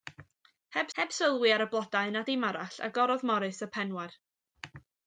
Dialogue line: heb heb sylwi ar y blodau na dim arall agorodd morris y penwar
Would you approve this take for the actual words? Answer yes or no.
yes